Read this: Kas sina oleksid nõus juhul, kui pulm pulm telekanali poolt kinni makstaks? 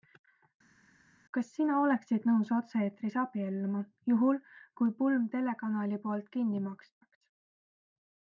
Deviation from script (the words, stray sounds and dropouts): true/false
true